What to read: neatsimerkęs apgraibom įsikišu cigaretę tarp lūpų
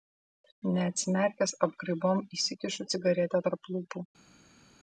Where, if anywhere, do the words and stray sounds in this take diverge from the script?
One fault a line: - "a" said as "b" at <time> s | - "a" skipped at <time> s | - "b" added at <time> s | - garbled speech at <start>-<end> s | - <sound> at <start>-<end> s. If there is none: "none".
none